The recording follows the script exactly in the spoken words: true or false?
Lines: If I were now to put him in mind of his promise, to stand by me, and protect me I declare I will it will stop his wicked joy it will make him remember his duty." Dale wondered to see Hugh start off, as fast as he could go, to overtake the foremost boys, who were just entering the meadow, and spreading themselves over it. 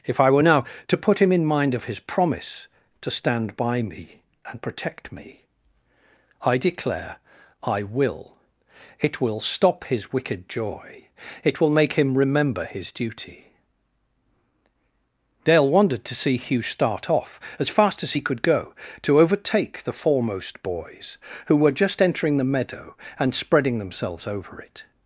true